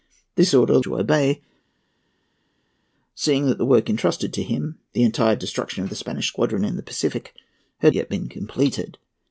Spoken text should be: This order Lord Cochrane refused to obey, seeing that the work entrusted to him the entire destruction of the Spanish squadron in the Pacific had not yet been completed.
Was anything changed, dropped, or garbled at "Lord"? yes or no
yes